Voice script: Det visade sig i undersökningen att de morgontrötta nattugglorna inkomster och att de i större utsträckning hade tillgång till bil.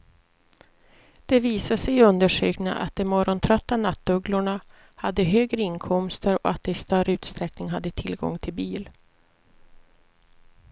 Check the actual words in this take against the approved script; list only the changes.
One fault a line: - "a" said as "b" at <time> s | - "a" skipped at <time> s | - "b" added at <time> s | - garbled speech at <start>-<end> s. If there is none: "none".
- "hade högre" added at 5.0 s